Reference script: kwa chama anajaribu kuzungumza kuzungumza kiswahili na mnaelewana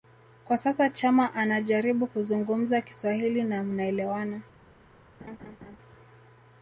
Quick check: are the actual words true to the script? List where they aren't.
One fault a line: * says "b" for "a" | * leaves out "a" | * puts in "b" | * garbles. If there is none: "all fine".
* puts in "sasa"
* leaves out "kuzungumza"